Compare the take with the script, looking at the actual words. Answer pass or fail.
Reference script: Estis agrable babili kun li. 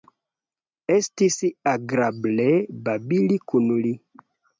pass